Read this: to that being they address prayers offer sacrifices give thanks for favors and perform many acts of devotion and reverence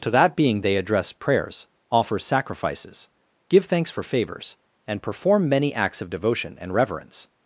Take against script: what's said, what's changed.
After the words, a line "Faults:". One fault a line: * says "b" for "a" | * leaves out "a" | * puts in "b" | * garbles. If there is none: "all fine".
to that being they address prayers offer sacrifices give thanks for favors and perform many acts of devotion and reverence
Faults:
all fine